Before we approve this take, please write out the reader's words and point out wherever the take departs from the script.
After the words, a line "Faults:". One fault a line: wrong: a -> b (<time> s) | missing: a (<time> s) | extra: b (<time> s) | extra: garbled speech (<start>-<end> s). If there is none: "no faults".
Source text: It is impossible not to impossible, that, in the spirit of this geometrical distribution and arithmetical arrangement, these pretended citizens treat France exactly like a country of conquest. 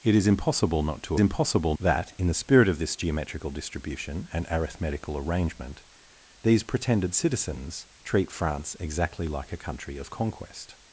It is impossible not to impossible, that, in the spirit of this geometrical distribution and arithmetical arrangement, these pretended citizens treat France exactly like a country of conquest.
Faults:
no faults